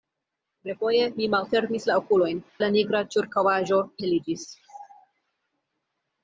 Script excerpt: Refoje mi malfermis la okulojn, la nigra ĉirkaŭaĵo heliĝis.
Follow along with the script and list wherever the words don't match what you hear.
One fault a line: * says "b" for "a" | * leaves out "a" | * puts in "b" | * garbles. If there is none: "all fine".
all fine